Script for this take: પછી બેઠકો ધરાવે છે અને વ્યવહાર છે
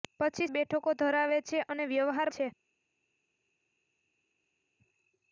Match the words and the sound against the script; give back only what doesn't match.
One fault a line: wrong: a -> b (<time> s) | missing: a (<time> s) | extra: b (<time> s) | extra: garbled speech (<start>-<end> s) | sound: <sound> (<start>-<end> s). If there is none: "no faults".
no faults